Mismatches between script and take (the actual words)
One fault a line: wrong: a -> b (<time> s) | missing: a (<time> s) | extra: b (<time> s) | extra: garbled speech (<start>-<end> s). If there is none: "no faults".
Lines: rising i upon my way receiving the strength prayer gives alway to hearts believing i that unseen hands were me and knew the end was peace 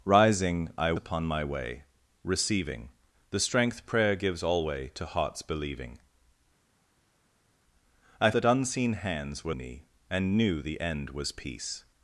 no faults